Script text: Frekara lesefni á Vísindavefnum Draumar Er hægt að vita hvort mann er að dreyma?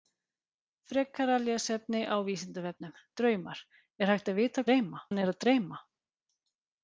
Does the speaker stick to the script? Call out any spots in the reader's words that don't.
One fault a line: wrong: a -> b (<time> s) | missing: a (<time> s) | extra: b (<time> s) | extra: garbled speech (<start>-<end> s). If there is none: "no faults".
wrong: hvort -> dreyma (4.7 s)